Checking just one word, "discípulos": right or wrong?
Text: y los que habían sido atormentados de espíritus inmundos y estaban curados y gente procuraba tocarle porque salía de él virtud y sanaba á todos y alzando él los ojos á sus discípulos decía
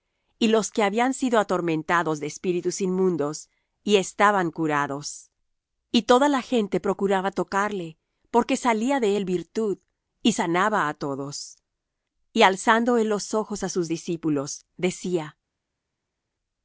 right